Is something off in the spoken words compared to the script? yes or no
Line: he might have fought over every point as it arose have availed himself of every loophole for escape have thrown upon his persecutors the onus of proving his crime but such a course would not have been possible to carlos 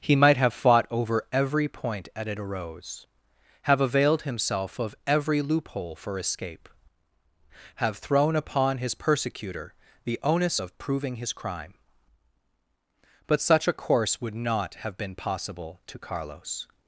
yes